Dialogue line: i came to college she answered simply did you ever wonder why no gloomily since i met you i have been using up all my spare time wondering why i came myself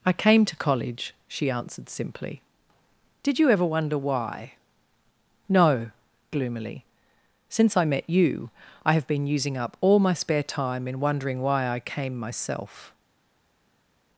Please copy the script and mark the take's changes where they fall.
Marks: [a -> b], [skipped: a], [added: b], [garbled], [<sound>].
i came to college she answered simply did you ever wonder why no gloomily since i met you i have been using up all my spare time [added: in] wondering why i came myself